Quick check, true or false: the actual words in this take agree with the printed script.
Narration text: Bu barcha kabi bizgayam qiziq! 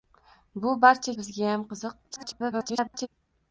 false